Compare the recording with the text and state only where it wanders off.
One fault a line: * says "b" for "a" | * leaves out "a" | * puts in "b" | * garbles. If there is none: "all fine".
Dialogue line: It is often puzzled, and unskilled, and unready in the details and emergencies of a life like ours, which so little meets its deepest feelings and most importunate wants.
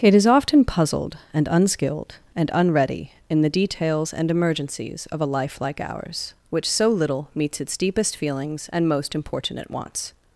all fine